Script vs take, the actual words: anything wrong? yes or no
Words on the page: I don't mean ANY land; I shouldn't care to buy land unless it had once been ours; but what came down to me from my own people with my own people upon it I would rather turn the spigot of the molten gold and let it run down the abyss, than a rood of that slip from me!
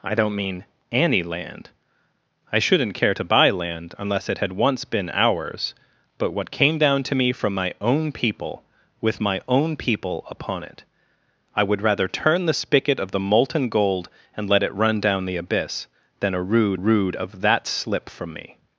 yes